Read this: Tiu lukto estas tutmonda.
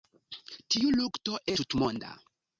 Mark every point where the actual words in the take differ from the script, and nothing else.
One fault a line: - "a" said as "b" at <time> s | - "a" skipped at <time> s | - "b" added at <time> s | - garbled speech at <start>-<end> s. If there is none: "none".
- "estas" skipped at 1.4 s